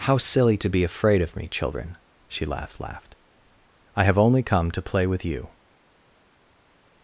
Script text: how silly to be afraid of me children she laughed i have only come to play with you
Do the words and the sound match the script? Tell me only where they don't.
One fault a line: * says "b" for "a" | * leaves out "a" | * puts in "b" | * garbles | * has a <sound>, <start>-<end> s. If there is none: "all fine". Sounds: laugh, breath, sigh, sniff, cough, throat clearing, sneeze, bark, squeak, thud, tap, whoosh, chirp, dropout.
* puts in "laughed"